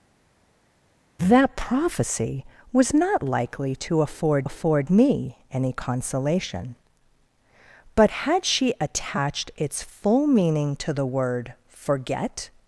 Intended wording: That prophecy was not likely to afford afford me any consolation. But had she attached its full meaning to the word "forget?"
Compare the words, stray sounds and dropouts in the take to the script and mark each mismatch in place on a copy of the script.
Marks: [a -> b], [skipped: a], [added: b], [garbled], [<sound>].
That prophecy was not likely to afford afford me any consolation. But had she attached its full meaning to the word "forget?"